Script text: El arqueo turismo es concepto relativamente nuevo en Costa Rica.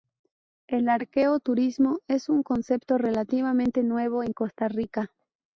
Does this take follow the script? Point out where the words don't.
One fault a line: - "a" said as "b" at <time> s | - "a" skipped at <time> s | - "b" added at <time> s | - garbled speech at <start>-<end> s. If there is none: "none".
- "un" added at 2.3 s